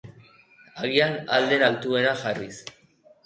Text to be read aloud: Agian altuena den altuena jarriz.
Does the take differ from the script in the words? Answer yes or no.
yes